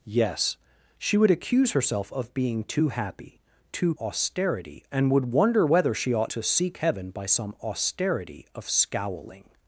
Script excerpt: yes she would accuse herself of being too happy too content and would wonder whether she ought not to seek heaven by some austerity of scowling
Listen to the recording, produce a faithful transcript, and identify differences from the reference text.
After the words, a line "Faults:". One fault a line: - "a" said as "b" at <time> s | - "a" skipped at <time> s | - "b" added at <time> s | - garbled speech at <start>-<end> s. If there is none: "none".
yes she would accuse herself of being too happy too austerity and would wonder whether she ought to seek heaven by some austerity of scowling
Faults:
- "content" said as "austerity" at 4.0 s
- "not" skipped at 6.3 s